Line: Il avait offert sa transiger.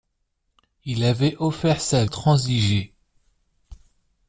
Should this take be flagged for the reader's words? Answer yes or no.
no